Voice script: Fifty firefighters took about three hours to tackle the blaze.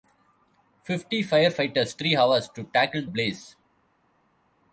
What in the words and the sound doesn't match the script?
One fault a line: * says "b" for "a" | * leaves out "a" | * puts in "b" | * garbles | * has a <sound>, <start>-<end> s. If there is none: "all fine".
* leaves out "took about"
* leaves out "the"